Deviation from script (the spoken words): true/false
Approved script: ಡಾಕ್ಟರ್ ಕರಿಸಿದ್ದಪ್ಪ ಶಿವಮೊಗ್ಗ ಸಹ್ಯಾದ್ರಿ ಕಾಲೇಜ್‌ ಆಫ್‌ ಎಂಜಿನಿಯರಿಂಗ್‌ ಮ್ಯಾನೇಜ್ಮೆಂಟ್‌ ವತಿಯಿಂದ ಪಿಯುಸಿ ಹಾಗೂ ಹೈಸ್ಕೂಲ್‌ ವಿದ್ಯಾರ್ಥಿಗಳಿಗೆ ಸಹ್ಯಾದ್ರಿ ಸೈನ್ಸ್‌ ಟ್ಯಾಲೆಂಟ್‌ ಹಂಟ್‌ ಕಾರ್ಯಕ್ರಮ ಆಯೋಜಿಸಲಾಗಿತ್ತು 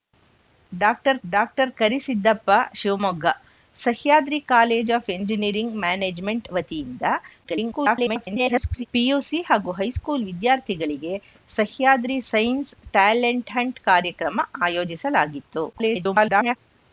true